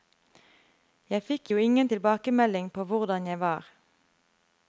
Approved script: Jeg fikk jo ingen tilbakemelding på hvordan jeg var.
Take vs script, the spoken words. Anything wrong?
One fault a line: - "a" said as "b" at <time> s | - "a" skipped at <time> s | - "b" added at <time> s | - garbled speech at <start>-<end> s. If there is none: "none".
none